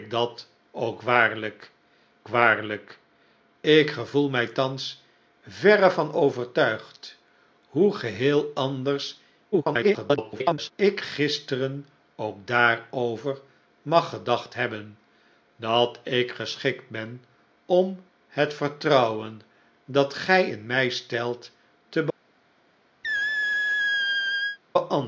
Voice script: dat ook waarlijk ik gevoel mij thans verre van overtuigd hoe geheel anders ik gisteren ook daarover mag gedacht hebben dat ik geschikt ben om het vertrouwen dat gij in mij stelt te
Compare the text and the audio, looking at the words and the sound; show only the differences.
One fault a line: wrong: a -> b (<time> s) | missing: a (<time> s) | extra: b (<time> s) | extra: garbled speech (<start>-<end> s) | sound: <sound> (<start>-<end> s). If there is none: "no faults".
extra: waarlijk (2.3 s)
extra: garbled speech (9.5-10.7 s)
sound: squeak (23.0-24.6 s)